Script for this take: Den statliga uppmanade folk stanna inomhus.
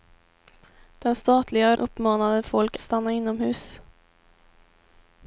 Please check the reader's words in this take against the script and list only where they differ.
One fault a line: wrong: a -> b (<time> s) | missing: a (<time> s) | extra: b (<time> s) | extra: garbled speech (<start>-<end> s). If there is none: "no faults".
no faults